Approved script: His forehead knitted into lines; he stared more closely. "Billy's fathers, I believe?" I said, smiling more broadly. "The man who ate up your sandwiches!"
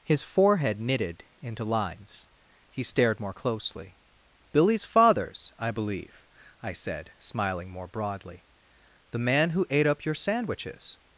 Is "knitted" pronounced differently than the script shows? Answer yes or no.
no